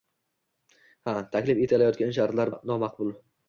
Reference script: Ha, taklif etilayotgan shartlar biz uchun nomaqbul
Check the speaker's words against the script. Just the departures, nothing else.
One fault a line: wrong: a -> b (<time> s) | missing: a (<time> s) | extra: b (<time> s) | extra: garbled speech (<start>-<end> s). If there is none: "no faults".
missing: biz uchun (2.5 s)